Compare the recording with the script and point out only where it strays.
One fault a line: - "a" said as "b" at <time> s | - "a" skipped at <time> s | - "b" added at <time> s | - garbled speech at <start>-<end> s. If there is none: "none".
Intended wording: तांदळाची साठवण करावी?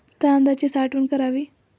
none